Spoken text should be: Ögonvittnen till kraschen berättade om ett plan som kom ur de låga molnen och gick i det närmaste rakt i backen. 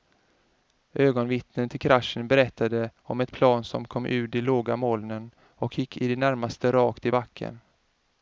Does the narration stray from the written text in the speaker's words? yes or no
no